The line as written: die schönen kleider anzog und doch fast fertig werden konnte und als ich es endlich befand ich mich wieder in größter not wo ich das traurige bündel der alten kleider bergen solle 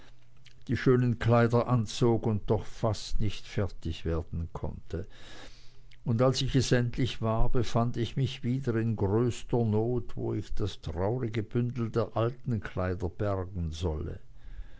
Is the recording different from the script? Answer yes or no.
yes